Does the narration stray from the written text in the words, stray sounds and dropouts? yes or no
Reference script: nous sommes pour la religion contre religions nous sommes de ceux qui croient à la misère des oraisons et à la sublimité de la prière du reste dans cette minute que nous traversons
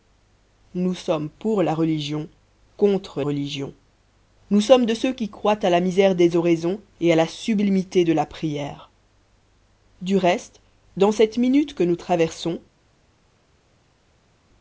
no